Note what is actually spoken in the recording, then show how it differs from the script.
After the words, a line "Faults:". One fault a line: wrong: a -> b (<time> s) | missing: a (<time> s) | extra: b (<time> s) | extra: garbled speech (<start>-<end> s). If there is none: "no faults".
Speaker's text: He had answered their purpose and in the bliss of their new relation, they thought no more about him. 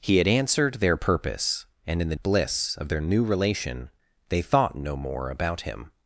He had answered their purpose and in the bliss of their new relation, they thought no more about him.
Faults:
no faults